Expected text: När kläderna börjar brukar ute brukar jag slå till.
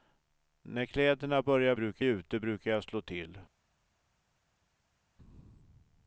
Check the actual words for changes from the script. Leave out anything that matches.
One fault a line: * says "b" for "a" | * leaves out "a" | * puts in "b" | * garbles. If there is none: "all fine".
all fine